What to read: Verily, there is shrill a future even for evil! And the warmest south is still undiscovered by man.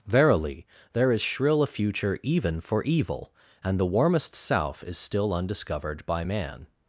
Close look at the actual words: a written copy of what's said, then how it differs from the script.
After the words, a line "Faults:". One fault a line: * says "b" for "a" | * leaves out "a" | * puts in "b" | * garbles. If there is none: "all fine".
Verily, there is shrill a future even for evil! And the warmest south is still undiscovered by man.
Faults:
all fine